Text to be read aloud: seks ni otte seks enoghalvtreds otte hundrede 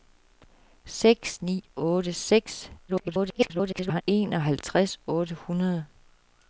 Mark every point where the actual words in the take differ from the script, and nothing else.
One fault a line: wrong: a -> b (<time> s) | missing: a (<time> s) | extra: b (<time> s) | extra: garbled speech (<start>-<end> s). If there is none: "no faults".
extra: garbled speech (2.9-4.0 s)